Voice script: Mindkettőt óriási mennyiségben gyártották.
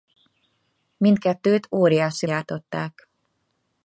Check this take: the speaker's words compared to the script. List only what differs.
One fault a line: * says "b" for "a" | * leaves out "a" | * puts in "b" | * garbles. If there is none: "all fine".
* leaves out "mennyiségben"